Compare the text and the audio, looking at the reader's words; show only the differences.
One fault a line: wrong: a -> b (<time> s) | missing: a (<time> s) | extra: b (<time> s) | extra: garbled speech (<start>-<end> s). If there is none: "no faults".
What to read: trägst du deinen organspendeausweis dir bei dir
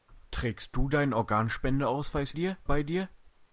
no faults